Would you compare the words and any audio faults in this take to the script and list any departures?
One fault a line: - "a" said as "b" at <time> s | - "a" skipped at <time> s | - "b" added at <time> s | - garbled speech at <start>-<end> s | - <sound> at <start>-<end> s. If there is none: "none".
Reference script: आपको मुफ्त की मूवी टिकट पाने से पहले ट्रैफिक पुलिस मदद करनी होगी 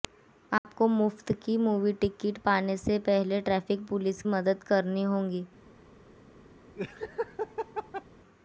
- dropout at 0.6-0.6 s
- laugh at 6.8-8.0 s